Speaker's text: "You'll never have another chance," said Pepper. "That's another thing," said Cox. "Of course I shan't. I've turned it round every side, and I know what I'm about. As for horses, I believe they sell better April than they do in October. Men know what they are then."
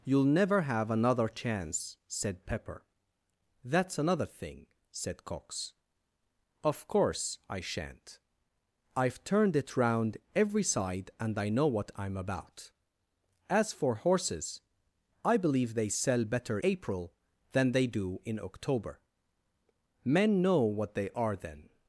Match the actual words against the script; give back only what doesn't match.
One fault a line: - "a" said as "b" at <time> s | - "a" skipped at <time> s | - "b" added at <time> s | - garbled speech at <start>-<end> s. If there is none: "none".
none